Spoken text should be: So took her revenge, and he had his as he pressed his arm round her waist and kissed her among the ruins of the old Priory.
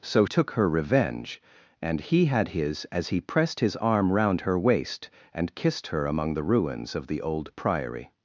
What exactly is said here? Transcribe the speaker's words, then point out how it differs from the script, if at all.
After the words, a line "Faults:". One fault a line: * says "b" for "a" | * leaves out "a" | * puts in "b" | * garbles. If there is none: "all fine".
So took her revenge, and he had his as he pressed his arm round her waist and kissed her among the ruins of the old Priory.
Faults:
all fine